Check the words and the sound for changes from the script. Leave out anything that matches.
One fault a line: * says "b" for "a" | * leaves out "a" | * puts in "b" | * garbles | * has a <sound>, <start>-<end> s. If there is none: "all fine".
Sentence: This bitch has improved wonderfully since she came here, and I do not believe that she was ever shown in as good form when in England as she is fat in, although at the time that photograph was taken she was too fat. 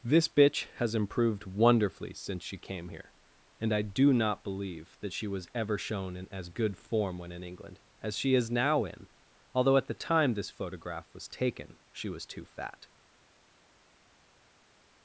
* says "now" for "fat"
* says "this" for "that"